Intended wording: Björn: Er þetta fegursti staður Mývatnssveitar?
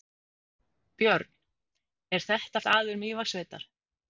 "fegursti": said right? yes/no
no